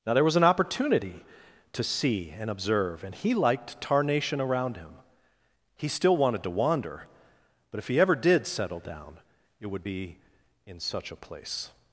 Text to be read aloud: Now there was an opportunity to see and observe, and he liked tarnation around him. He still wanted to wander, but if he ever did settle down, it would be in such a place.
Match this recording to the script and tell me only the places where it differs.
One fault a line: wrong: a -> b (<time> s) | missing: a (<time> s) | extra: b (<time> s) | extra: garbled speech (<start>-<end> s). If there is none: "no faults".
no faults